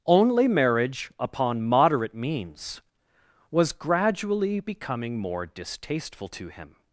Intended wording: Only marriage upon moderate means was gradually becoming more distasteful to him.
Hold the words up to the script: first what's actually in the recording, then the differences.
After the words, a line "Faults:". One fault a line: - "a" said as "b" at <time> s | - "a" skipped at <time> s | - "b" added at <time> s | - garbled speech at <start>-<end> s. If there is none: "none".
Only marriage upon moderate means was gradually becoming more distasteful to him.
Faults:
none